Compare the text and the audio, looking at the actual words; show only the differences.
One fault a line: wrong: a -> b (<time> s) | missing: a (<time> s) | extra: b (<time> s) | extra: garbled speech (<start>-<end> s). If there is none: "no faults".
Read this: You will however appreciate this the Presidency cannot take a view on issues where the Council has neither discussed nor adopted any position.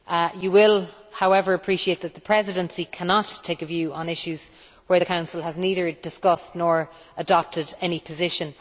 wrong: this -> that (2.0 s)